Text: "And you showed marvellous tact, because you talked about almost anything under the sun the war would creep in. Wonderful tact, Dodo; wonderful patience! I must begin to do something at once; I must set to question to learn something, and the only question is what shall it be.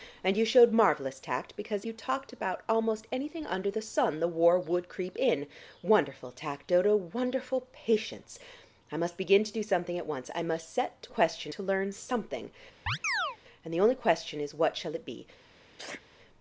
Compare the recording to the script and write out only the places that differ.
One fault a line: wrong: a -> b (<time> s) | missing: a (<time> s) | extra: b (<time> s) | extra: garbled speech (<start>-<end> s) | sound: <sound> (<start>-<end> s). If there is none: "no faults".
sound: chirp (12.9-13.4 s)
sound: sneeze (15.8-16.0 s)